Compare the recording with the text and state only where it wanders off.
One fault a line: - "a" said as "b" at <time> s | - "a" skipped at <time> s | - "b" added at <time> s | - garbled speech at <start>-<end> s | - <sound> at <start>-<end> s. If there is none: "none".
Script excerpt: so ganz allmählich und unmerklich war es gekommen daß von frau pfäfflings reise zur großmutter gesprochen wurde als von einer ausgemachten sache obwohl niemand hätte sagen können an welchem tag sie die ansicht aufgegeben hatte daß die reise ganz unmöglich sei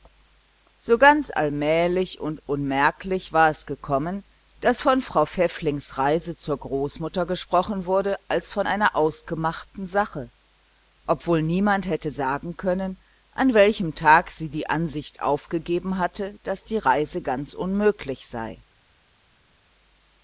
none